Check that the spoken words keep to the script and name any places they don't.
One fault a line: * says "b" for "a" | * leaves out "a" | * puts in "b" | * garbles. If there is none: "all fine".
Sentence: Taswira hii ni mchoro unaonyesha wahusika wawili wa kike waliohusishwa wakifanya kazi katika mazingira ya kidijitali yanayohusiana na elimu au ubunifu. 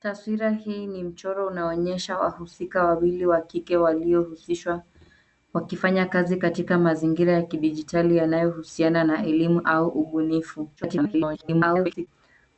* garbles